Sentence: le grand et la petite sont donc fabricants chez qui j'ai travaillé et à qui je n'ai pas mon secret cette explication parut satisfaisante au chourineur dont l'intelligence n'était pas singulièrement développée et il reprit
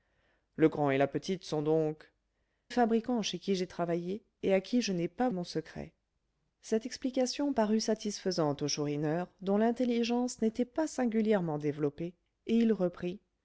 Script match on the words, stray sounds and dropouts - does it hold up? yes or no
yes